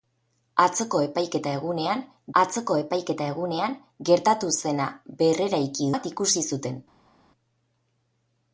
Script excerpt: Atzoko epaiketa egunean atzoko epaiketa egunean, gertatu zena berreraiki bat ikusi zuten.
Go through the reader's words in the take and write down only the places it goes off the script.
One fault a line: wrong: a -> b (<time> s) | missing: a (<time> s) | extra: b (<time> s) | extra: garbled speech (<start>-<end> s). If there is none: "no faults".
no faults